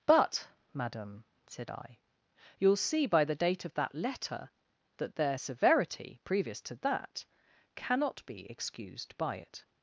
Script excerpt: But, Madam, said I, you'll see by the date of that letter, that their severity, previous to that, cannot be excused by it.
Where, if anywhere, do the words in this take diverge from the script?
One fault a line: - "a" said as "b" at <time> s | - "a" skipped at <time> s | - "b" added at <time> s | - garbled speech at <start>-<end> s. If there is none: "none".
none